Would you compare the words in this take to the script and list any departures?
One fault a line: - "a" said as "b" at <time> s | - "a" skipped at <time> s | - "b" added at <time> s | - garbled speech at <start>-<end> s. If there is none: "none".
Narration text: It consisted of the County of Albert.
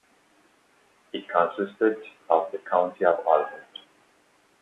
none